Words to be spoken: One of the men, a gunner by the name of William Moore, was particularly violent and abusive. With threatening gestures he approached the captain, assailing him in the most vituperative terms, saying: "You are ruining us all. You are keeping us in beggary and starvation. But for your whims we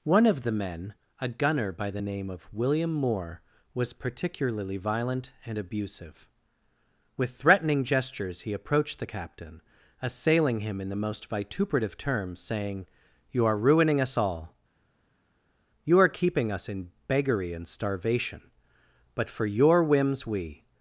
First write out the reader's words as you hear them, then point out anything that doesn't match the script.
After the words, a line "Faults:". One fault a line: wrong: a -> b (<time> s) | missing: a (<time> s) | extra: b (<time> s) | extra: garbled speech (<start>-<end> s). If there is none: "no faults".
One of the men, a gunner by the name of William Moore, was particularly violent and abusive. With threatening gestures he approached the captain, assailing him in the most vituperative terms, saying: "You are ruining us all. You are keeping us in beggary and starvation. But for your whims we
Faults:
no faults